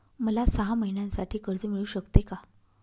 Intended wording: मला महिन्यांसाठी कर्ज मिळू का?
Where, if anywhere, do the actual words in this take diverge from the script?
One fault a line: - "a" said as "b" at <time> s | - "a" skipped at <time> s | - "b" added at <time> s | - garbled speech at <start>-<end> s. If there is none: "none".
- "सहा" added at 0.5 s
- "शकते" added at 1.9 s